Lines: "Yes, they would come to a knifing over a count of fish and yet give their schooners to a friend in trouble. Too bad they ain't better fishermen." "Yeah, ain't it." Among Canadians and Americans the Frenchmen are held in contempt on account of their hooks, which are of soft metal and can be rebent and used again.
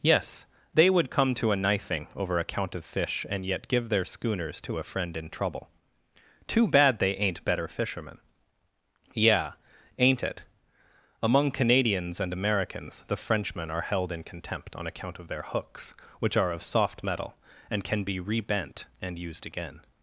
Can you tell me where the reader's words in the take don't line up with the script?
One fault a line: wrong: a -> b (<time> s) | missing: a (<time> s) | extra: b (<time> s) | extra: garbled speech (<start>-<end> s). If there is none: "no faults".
no faults